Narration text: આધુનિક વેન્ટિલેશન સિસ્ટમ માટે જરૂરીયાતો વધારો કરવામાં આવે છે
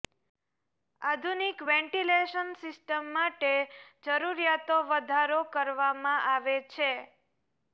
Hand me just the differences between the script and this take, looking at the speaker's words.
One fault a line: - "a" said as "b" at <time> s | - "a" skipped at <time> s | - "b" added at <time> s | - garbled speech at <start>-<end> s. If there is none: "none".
none